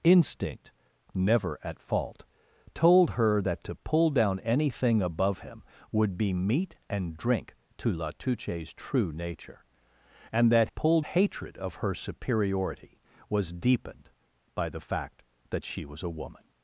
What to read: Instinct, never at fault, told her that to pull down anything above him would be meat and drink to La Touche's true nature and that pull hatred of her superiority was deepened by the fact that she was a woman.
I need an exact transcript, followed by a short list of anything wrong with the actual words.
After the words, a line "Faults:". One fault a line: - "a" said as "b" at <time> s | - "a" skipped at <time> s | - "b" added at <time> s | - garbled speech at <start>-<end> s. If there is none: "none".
Instinct, never at fault, told her that to pull down anything above him would be meat and drink to La Touche's true nature and that pull hatred of her superiority was deepened by the fact that she was a woman.
Faults:
none